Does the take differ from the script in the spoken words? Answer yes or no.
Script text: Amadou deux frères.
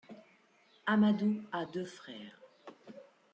yes